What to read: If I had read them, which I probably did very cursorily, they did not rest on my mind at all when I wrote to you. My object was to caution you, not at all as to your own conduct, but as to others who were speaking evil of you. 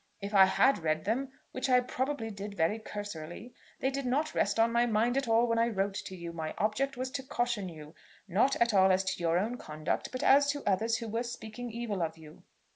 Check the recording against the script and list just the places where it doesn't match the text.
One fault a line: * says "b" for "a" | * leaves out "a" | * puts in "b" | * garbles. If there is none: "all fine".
all fine